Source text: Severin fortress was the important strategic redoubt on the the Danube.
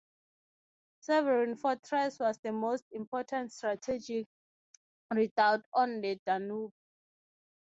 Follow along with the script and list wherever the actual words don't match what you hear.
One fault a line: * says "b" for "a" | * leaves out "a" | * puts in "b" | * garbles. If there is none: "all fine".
* puts in "most"
* leaves out "the"